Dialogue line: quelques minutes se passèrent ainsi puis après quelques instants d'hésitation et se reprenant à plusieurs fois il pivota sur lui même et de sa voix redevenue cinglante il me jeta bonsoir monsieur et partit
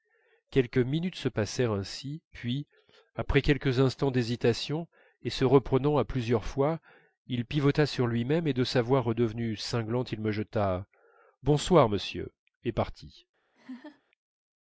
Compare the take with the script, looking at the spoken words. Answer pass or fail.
pass